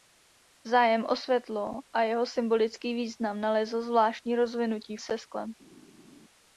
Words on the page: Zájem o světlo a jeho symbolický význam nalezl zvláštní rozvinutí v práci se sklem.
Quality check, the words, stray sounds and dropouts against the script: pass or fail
fail